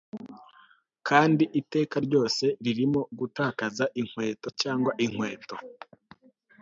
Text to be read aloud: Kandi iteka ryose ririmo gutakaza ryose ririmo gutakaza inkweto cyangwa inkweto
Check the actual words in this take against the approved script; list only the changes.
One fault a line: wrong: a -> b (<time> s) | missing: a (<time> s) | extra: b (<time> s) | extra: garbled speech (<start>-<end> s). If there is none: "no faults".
missing: ryose ririmo gutakaza (3.8 s)